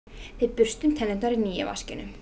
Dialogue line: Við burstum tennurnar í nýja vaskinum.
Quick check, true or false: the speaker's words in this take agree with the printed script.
true